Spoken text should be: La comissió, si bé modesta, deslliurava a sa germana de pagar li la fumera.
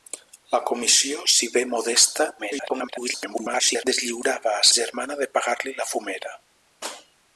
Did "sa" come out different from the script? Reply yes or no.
yes